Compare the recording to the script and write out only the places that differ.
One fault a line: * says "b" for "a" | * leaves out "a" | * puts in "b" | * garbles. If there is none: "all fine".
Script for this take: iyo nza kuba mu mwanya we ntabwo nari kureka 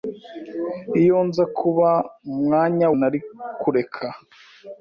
* leaves out "we ntabwo"